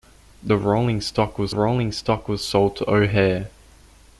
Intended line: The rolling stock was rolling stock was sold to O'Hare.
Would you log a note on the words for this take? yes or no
no